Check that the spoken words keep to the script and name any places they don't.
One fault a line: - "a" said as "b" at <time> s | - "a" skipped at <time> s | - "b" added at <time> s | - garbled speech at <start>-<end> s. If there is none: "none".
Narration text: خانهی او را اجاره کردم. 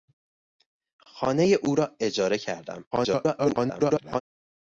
- garbled speech at 2.9-4.2 s